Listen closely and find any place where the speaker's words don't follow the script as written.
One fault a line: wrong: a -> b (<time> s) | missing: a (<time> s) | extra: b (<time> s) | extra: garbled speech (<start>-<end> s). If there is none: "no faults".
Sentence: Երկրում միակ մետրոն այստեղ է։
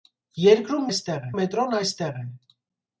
wrong: միակ -> այստեղ (0.9 s)